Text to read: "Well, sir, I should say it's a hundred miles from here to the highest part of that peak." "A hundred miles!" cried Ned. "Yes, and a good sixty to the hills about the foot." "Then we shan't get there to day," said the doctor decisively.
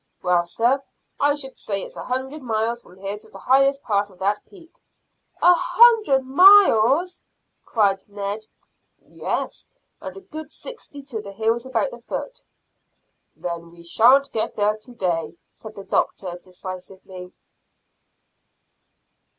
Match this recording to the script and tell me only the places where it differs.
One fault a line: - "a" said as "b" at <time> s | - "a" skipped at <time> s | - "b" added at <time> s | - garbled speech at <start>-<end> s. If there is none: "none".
none